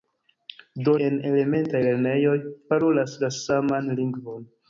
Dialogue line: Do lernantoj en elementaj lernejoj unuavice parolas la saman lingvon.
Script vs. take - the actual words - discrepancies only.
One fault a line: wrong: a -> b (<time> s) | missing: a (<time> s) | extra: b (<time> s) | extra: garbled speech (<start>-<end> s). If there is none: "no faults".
missing: lernantoj (0.9 s)
missing: unuavice (2.4 s)